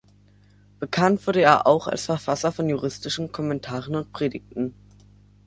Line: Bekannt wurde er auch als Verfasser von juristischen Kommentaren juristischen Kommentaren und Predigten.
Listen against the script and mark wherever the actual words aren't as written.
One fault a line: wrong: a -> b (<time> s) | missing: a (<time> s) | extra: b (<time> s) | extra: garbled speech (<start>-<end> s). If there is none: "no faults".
missing: juristischen Kommentaren (4.0 s)